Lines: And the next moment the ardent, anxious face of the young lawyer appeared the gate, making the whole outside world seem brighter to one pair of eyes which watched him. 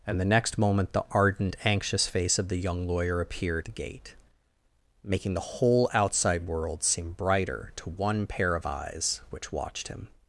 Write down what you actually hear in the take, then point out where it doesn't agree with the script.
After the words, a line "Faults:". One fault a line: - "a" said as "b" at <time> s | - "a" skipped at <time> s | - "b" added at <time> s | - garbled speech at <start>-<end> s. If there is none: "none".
And the next moment the ardent, anxious face of the young lawyer appeared the gate, making the whole outside world seem brighter to one pair of eyes which watched him.
Faults:
none